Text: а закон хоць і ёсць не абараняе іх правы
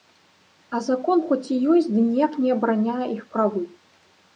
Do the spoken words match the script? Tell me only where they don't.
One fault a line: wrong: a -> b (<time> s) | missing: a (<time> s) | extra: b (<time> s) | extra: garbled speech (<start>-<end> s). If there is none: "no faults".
extra: ды ніяк (1.9 s)